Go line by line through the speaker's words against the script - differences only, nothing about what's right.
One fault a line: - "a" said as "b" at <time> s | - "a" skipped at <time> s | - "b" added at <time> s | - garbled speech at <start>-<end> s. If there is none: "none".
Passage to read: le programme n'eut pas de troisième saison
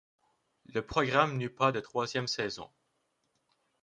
none